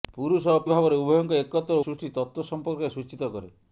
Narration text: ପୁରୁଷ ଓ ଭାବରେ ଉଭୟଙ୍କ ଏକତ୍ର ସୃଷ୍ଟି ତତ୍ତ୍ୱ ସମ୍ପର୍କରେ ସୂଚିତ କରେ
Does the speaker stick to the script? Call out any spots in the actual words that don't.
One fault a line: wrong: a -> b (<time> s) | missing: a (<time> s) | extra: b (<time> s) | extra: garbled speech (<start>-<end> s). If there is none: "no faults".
no faults